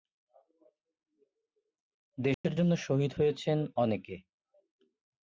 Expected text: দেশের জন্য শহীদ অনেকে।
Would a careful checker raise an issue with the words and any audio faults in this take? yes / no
yes